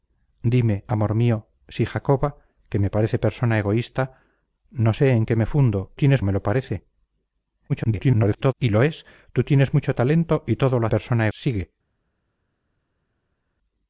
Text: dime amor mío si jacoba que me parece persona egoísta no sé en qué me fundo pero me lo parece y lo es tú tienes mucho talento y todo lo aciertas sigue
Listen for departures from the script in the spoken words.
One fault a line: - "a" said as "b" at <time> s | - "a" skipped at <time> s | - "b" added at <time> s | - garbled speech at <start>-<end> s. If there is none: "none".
- "pero" said as "tienes" at 6.0 s
- garbled speech at 7.7-8.5 s
- "aciertas" said as "persona" at 10.9 s